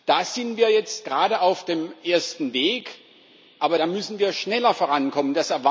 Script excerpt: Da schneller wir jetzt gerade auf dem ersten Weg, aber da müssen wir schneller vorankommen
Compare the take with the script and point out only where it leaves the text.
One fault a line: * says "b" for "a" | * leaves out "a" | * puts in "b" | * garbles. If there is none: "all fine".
* says "sind" for "schneller"